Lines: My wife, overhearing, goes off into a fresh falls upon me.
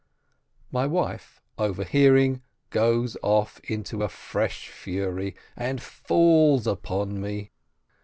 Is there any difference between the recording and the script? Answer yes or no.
yes